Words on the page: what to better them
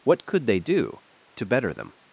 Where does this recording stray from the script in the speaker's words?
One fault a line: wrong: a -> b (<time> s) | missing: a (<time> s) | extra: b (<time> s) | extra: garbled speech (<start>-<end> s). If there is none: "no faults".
extra: could they do (0.2 s)